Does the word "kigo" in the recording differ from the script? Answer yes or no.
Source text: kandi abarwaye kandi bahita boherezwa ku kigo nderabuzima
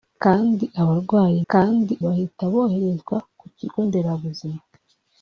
no